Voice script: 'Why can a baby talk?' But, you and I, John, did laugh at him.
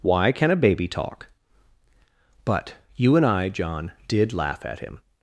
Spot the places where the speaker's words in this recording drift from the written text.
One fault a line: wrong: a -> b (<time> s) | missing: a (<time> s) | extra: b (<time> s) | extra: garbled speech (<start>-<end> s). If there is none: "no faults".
no faults